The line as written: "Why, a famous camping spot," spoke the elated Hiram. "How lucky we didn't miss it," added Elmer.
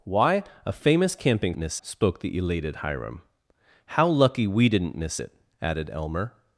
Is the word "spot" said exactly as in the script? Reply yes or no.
no